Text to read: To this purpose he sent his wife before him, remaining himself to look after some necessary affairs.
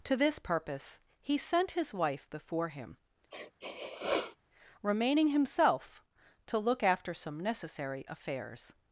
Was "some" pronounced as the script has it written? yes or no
yes